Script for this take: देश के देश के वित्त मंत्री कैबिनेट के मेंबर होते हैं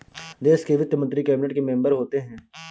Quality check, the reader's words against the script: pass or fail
fail